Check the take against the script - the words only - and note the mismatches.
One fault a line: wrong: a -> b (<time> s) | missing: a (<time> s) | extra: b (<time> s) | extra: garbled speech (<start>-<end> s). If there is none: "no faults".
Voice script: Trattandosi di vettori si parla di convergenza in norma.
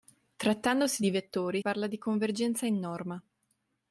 missing: si (1.6 s)